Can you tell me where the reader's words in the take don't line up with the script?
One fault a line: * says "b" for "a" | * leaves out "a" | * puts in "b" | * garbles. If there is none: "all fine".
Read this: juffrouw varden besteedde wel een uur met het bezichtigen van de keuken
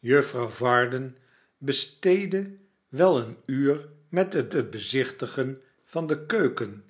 * puts in "het"